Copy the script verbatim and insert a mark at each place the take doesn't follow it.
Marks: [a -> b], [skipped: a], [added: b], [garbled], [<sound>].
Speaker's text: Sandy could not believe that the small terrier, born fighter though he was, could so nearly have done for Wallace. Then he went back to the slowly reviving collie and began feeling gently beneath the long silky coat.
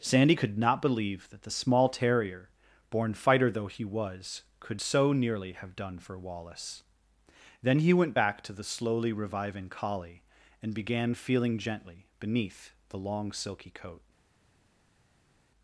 Sandy could not believe that the small terrier, born fighter though he was, could so nearly have done for Wallace. Then he went back to the slowly reviving collie and began feeling gently beneath the long silky coat.